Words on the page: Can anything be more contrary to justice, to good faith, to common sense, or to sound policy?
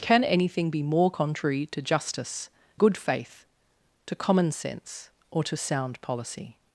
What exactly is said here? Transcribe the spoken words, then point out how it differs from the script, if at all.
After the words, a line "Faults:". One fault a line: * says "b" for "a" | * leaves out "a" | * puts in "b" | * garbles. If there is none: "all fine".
Can anything be more contrary to justice, good faith, to common sense, or to sound policy?
Faults:
* leaves out "to"